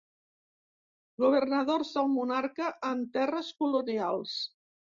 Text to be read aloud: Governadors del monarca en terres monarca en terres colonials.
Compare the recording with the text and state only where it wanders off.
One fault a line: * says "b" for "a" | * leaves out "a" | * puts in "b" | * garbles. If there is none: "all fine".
* leaves out "monarca en terres"